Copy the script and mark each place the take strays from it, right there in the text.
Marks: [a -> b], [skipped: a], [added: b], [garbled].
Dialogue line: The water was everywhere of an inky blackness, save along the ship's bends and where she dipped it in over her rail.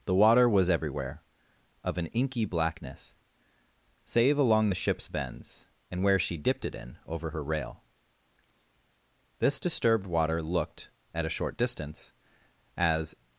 The water was everywhere of an inky blackness, save along the ship's bends and where she dipped it in over her rail. [added: This disturbed water looked at a short distance as]